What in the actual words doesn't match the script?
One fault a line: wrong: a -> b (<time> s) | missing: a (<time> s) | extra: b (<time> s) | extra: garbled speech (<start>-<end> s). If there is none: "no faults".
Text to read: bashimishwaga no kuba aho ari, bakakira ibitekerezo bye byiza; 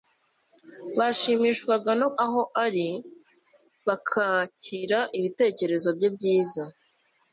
missing: kuba (2.1 s)